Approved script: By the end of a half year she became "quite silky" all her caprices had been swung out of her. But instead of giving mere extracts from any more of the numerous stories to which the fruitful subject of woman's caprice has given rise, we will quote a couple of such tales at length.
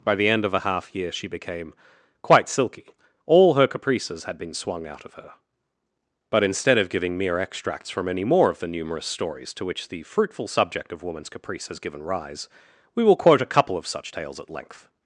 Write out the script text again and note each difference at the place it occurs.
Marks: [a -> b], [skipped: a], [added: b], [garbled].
By the end of a half year she became "quite silky" all her caprices had been swung out of her. But instead of giving mere extracts from any more of the numerous stories to which the fruitful subject of woman's caprice has given rise, we will quote a couple of such tales at length.